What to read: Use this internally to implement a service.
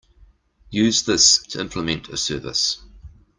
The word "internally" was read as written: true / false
false